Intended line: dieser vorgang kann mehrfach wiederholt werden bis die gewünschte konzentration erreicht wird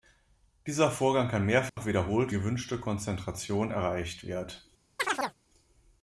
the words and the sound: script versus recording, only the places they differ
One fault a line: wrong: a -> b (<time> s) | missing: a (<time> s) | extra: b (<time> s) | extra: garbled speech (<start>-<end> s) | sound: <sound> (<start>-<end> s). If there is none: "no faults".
sound: dropout (1.7-1.8 s)
missing: werden bis die (2.4 s)
sound: chirp (5.0-5.4 s)